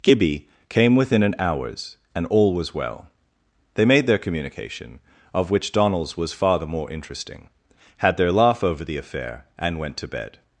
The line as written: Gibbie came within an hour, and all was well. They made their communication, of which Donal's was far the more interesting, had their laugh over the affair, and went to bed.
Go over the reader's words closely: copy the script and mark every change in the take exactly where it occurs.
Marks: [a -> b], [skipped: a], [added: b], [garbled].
Gibbie came within an [hour, -> hours] and all was well. They made their communication, of which Donal's was far the more interesting, had their laugh over the affair, and went to bed.